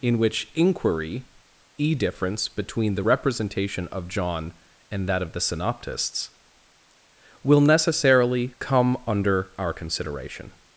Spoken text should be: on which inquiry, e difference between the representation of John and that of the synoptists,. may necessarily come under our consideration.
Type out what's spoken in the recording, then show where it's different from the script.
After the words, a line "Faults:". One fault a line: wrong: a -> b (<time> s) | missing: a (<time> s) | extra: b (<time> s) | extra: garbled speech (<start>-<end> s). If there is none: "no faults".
in which inquiry, e difference between the representation of John and that of the synoptists,. will necessarily come under our consideration.
Faults:
wrong: on -> in (0.0 s)
wrong: may -> will (7.4 s)